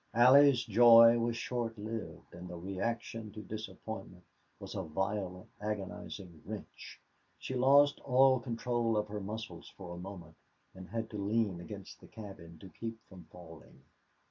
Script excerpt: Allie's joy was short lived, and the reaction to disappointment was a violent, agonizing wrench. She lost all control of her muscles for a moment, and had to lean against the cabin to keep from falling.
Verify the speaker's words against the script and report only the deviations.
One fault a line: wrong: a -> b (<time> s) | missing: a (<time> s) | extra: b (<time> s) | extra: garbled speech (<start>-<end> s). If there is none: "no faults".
no faults